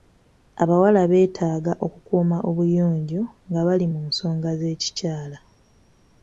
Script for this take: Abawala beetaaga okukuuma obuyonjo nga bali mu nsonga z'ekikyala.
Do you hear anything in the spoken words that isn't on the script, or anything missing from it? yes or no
no